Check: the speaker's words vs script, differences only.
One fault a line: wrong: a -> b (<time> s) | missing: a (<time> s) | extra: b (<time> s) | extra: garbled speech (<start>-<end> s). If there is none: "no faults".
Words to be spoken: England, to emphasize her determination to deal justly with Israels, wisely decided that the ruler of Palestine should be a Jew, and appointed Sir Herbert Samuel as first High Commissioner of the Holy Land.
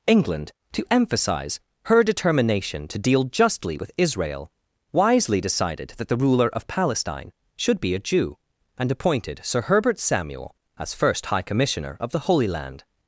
wrong: Israels -> Israel (4.0 s)